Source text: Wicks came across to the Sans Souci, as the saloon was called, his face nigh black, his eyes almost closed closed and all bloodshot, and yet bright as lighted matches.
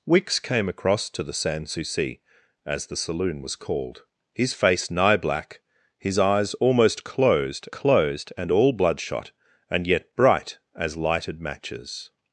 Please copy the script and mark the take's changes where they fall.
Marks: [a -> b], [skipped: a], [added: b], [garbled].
Wicks came across to the Sans Souci, as the saloon was called, his face nigh black, his eyes almost closed closed and all bloodshot, and yet bright as lighted matches.